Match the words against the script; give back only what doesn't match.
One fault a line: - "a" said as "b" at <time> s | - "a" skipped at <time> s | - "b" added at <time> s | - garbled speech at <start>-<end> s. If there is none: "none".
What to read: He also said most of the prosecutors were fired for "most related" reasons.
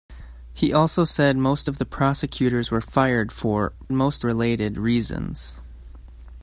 none